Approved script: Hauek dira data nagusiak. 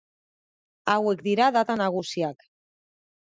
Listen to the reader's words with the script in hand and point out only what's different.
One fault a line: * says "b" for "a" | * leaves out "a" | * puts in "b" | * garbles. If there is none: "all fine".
all fine